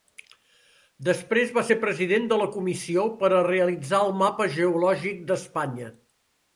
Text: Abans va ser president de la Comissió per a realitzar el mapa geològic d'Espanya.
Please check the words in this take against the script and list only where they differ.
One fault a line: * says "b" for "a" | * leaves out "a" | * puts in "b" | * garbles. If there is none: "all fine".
* says "Després" for "Abans"